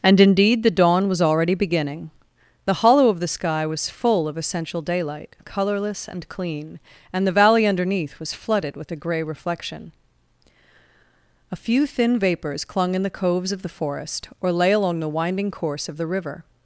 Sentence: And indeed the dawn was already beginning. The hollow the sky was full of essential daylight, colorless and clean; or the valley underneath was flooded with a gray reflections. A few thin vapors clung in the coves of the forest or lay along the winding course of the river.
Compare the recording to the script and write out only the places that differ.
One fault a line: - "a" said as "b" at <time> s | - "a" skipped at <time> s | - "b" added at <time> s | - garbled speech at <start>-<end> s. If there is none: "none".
- "of" added at 3.1 s
- "or" said as "and" at 7.1 s
- "reflections" said as "reflection" at 9.2 s